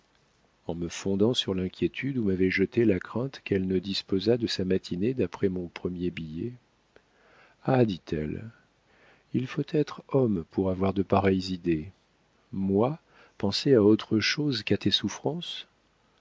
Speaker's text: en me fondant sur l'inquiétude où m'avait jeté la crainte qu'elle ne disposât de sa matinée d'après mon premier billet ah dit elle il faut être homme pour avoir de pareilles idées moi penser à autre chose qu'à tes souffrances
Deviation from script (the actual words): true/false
false